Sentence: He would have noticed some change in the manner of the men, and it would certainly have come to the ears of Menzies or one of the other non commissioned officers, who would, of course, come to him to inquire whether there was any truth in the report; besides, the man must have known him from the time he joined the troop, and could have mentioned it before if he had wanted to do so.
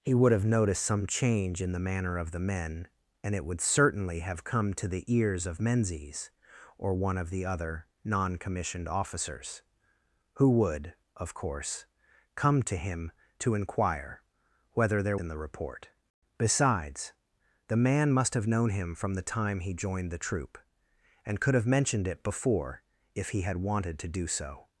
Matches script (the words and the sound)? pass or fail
fail